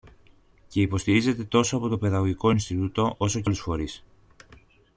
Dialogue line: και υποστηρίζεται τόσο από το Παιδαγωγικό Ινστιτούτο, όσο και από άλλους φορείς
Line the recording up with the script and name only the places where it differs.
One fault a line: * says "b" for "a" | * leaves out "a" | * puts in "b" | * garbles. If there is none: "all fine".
* leaves out "από"